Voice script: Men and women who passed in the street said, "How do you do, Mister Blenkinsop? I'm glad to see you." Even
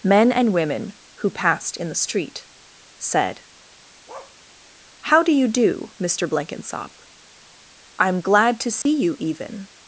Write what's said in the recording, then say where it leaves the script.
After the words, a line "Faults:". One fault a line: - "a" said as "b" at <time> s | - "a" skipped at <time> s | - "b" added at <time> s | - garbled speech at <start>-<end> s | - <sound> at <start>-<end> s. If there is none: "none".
Men and women who passed in the street said, "How do you do, Mister Blenkinsop? I'm glad to see you." Even
Faults:
- bark at 4.1-4.4 s
- dropout at 8.8-8.9 s